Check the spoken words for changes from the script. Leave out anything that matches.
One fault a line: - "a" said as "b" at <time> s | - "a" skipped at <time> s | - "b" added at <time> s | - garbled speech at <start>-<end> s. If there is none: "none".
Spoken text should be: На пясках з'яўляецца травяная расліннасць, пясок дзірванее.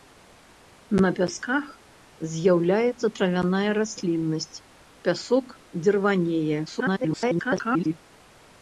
- garbled speech at 6.7-7.9 s